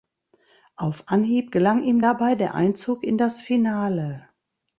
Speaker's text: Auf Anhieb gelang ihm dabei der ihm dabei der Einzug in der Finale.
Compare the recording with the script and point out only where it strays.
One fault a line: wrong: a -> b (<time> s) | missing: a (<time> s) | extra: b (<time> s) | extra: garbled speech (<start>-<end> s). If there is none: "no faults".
missing: ihm dabei der (2.5 s)
wrong: der -> das (3.2 s)